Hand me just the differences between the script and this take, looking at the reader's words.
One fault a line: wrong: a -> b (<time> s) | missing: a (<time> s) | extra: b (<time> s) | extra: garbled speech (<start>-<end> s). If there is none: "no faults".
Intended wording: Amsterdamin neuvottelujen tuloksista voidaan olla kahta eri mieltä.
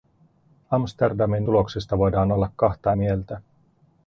missing: neuvottelujen (1.5 s)
missing: eri (2.9 s)